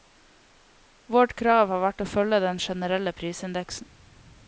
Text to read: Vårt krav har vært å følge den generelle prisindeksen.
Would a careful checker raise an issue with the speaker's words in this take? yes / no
no